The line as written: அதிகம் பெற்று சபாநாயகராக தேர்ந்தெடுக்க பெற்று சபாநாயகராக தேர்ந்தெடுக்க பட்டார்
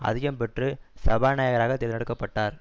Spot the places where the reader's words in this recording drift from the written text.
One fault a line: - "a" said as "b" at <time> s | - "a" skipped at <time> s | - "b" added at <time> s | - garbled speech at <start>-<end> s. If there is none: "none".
- "பெற்று சபாநாயகராக தேர்ந்தெடுக்க" skipped at 2.1 s